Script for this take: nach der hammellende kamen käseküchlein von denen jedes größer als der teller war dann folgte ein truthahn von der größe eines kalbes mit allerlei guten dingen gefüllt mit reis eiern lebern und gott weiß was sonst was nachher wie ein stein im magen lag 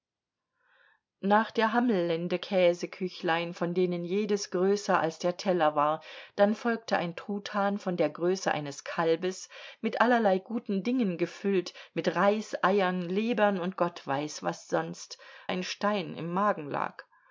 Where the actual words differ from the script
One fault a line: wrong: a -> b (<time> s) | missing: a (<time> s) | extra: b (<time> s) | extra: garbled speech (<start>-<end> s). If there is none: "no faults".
missing: kamen (2.4 s)
missing: was nachher wie (15.2 s)